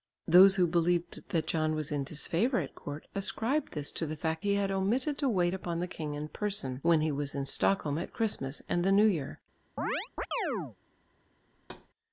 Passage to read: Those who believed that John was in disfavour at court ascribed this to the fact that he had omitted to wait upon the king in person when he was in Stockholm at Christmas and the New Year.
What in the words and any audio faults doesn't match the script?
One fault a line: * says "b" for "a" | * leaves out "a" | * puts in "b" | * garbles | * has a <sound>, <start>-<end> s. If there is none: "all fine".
* leaves out "that"
* has a chirp, 9.8-10.8 s
* has a thud, 11.5-11.9 s